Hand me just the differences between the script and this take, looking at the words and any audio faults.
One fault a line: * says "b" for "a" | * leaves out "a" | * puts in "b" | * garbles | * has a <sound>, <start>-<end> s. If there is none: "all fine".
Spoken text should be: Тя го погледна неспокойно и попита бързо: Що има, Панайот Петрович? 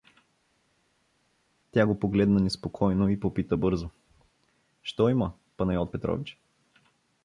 all fine